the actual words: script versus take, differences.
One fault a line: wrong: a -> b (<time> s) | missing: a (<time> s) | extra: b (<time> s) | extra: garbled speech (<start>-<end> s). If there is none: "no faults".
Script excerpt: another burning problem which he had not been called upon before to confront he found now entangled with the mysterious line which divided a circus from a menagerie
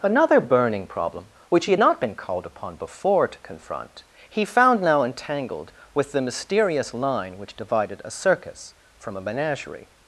no faults